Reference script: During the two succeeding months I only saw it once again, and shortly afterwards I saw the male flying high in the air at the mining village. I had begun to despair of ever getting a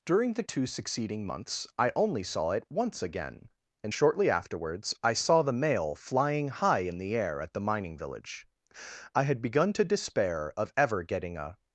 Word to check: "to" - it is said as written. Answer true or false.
true